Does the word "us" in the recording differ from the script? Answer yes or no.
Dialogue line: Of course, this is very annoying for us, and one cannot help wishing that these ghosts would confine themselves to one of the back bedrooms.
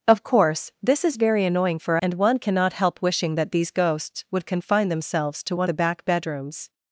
yes